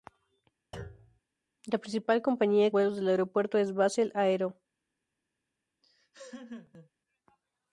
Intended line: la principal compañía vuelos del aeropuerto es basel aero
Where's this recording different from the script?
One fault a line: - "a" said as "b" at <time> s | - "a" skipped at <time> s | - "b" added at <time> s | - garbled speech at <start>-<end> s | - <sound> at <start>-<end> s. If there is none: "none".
- thud at 0.7-1.2 s
- laugh at 5.8-6.9 s